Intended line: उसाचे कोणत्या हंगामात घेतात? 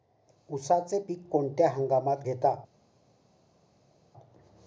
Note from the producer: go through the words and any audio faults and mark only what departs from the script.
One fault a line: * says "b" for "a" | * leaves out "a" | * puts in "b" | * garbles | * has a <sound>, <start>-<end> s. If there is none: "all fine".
* puts in "पीक"